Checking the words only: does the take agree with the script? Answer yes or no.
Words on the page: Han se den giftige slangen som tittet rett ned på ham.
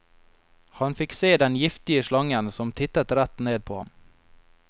no